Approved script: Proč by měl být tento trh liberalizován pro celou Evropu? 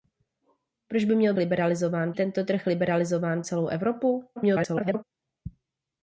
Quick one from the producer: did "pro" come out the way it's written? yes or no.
no